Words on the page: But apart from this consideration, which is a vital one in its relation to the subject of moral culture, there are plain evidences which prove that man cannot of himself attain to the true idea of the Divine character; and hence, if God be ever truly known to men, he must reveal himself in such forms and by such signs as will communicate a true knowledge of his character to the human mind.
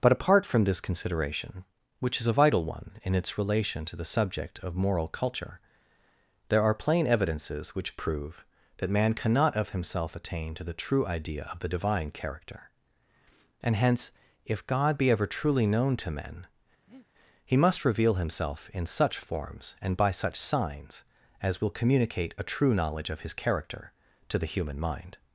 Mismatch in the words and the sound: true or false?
true